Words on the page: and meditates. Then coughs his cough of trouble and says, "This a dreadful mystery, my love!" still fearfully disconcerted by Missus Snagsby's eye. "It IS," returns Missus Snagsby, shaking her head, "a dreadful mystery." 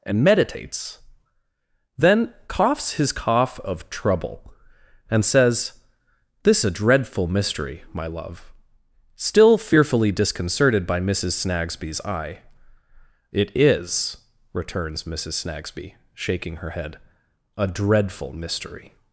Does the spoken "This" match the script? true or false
true